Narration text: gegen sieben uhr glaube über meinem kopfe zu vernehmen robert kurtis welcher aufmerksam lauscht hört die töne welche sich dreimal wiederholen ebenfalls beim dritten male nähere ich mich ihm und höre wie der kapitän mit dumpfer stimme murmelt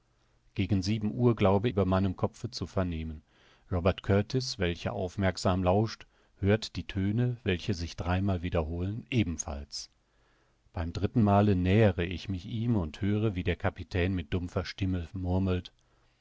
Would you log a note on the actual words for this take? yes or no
no